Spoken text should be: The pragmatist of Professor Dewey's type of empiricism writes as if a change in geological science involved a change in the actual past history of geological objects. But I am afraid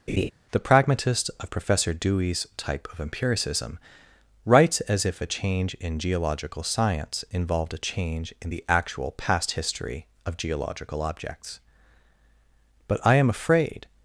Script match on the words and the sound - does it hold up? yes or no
no